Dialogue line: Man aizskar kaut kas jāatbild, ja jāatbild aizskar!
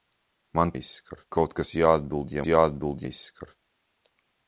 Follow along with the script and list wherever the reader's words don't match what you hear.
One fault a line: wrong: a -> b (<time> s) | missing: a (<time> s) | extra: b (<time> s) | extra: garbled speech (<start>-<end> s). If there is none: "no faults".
no faults